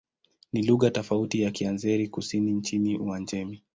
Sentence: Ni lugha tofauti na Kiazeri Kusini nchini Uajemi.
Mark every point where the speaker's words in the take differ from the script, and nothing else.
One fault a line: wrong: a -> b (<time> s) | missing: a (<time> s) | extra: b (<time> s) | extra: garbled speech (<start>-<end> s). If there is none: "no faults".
no faults